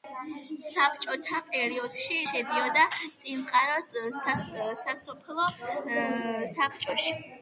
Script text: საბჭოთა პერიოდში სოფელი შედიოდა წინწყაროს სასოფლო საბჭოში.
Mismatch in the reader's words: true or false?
true